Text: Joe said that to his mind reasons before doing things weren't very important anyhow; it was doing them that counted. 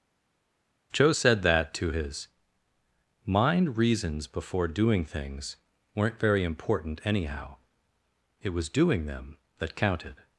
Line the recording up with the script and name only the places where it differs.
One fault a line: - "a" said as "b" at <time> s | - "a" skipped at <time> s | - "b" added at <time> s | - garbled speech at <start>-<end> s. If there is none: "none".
none